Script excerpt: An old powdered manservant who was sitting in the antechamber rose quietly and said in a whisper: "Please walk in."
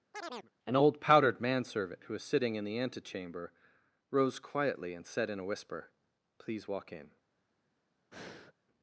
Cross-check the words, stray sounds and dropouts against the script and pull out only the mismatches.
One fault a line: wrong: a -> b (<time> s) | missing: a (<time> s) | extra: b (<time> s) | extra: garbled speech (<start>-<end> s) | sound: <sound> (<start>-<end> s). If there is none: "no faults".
sound: chirp (0.1-0.5 s)
sound: breath (8.1-8.5 s)